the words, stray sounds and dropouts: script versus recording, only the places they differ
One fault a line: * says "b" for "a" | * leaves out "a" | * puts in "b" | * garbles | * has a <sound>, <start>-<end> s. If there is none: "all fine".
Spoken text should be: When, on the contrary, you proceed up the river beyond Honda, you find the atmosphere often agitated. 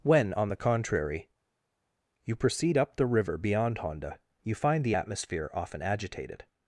all fine